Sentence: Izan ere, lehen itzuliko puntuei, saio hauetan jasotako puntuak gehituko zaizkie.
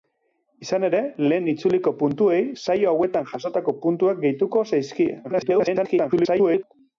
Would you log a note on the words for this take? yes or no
yes